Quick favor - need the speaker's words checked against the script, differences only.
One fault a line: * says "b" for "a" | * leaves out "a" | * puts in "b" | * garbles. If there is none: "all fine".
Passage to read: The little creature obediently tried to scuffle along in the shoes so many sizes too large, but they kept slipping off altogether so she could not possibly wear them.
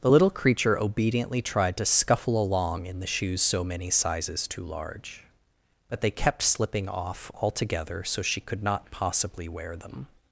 all fine